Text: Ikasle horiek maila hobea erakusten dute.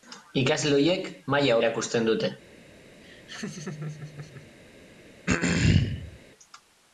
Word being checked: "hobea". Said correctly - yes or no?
no